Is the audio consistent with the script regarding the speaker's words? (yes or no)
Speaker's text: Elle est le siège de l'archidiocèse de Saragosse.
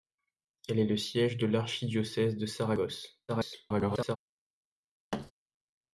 no